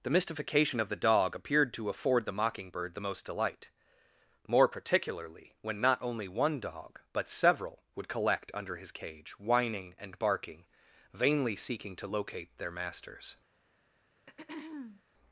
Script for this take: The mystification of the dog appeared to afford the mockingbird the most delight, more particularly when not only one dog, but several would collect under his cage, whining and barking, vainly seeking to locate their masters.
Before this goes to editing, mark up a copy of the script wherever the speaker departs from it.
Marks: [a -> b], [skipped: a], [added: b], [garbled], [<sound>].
The mystification of the dog appeared to afford the mockingbird the most delight, more particularly when not only one dog, but several would collect under his cage, whining and barking, vainly seeking to locate their masters. [throat clearing]